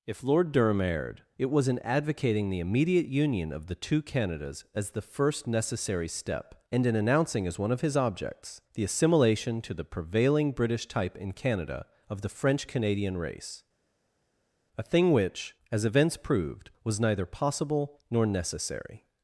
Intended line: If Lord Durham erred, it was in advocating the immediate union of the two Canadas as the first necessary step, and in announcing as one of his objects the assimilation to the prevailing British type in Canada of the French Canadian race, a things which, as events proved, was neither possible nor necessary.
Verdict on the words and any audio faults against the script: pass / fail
fail